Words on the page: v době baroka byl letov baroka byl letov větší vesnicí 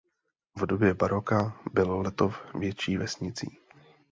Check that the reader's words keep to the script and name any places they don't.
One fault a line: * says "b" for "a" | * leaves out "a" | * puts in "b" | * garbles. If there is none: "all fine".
* leaves out "baroka byl letov"